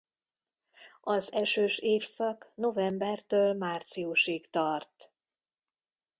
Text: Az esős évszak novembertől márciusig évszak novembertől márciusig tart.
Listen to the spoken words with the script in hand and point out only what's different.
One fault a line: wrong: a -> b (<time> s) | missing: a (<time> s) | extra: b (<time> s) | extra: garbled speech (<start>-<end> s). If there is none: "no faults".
missing: évszak novembertől márciusig (4.5 s)